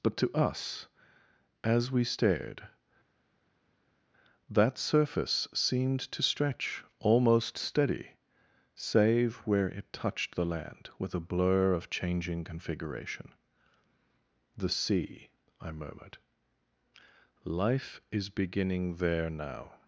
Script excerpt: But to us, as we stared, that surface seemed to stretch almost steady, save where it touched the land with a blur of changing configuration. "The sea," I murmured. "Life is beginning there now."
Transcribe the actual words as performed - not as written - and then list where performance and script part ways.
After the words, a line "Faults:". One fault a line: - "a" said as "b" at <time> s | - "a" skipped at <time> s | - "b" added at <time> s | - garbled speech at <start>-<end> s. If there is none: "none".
But to us, as we stared, that surface seemed to stretch almost steady, save where it touched the land with a blur of changing configuration. "The sea," I murmured. "Life is beginning there now."
Faults:
none